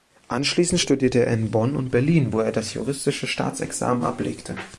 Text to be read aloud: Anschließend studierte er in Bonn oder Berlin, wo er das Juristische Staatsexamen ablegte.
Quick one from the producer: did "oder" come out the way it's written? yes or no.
no